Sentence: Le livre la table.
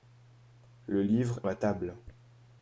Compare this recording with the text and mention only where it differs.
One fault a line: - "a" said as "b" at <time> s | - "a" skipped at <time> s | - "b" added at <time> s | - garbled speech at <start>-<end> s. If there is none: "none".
none